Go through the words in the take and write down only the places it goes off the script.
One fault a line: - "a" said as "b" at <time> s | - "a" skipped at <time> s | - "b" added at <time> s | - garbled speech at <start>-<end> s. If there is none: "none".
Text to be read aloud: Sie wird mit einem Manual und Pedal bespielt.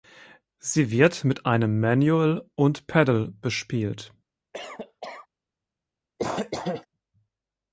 none